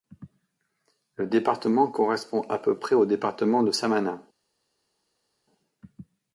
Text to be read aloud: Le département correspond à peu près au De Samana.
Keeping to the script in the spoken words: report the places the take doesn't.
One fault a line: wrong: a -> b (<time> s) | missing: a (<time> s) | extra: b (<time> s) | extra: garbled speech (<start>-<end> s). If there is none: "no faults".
extra: Département (3.0 s)